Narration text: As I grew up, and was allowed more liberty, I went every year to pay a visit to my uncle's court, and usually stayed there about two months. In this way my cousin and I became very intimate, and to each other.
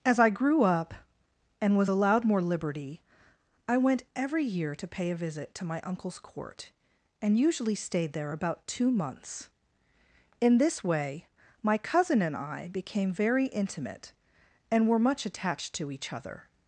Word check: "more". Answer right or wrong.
right